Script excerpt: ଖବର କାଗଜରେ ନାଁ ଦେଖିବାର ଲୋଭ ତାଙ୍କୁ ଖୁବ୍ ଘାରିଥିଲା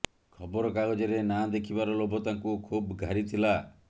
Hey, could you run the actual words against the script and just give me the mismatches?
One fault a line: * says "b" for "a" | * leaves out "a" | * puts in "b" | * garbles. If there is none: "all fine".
all fine